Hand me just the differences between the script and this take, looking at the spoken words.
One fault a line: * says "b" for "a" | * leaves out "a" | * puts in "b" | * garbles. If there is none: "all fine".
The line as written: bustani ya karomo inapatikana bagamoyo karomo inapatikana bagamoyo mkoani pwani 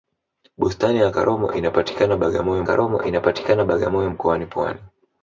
all fine